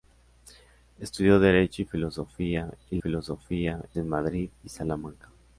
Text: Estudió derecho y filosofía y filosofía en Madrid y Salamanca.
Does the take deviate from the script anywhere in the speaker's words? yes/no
no